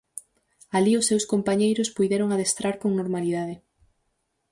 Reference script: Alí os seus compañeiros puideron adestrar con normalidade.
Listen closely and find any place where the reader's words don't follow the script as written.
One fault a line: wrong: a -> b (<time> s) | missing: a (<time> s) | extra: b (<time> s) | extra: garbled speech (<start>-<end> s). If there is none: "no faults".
no faults